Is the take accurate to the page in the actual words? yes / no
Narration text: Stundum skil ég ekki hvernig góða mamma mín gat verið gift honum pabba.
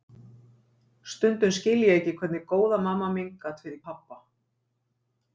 no